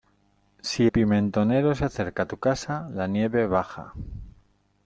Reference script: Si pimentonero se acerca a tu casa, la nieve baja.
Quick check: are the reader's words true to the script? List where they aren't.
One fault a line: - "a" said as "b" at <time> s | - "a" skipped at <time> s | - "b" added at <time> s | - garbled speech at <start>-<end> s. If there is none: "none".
none